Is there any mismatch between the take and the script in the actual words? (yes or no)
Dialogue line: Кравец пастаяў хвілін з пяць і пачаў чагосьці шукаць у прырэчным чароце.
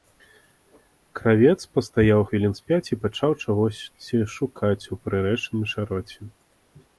no